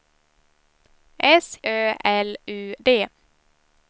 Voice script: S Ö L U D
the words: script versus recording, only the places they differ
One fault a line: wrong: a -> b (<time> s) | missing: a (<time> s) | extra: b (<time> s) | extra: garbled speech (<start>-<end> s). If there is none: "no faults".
no faults